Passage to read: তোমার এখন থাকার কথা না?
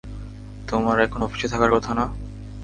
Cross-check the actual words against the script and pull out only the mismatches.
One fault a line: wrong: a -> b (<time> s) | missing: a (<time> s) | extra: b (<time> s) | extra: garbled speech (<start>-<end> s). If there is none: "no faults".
extra: অফিসে (1.2 s)